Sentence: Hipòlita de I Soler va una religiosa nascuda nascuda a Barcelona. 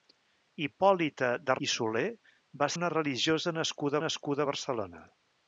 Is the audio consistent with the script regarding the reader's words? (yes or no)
yes